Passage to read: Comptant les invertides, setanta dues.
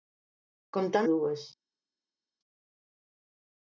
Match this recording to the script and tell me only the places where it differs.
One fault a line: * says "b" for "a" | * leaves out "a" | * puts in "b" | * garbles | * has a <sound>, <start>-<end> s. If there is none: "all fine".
* leaves out "les invertides setanta"